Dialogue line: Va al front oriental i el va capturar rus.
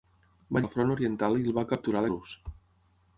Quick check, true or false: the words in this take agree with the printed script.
true